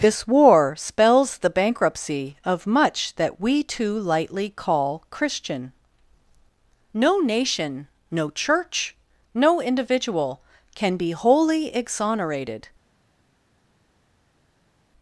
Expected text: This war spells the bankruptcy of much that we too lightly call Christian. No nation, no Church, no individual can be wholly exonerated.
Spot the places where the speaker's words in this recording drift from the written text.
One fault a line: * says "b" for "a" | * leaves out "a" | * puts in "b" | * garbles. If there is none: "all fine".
all fine